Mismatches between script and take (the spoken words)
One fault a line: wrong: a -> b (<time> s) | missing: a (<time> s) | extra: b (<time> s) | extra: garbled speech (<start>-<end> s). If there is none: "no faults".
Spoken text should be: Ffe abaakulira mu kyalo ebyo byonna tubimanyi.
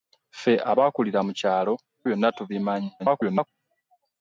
missing: ebyo (1.7 s)
extra: garbled speech (3.0-3.5 s)